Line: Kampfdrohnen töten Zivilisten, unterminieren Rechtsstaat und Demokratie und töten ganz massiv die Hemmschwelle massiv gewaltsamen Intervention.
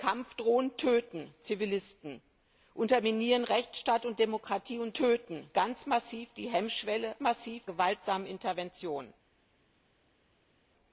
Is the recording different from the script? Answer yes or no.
no